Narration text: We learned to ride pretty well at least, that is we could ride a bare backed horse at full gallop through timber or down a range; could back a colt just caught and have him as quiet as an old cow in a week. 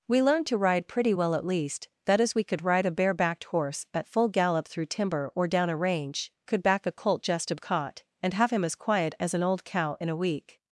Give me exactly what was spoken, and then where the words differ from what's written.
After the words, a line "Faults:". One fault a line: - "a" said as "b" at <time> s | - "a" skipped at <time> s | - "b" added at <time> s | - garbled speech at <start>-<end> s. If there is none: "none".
We learned to ride pretty well at least, that is we could ride a bare backed horse at full gallop through timber or down a range; could back a colt just caught and have him as quiet as an old cow in a week.
Faults:
none